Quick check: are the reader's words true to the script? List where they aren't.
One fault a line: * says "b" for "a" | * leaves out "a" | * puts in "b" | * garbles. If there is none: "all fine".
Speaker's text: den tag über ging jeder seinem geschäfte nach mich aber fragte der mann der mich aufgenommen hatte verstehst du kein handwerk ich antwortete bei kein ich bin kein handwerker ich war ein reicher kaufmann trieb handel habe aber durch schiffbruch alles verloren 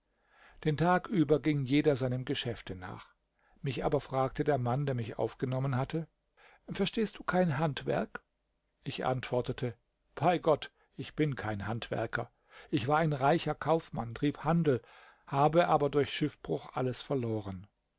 * says "gott" for "kein"